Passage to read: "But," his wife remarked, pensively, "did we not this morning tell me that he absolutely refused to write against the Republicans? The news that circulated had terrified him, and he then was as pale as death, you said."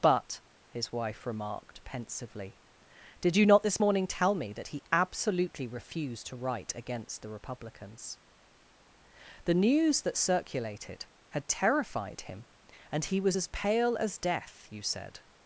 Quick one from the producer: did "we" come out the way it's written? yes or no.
no